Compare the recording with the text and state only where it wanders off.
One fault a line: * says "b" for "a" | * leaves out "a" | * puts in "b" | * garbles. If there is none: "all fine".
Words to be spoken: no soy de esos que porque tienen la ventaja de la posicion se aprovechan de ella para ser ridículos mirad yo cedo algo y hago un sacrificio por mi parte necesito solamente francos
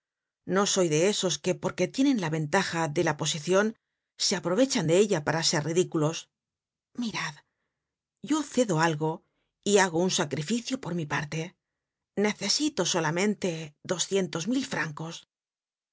* puts in "doscientos mil"